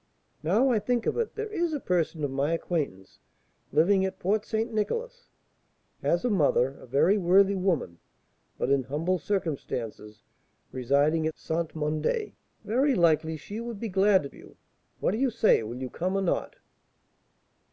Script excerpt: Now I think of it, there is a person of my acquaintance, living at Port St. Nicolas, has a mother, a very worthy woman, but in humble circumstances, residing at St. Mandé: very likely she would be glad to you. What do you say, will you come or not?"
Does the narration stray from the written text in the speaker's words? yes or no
no